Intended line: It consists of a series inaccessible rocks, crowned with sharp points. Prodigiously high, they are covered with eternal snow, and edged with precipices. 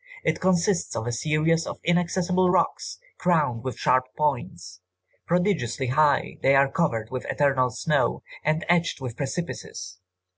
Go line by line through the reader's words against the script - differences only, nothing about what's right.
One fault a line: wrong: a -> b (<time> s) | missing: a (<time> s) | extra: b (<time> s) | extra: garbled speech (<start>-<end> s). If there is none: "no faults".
extra: of (1.7 s)